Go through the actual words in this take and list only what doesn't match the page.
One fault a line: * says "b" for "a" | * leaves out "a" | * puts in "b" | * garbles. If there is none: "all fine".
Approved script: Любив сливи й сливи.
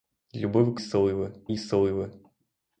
all fine